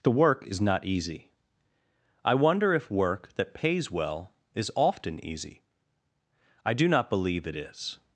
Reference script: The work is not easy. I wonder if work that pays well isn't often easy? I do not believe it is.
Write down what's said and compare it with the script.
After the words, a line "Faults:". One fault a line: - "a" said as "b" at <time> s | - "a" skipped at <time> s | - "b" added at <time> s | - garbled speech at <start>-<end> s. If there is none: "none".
The work is not easy. I wonder if work that pays well is often easy? I do not believe it is.
Faults:
- "isn't" said as "is" at 4.5 s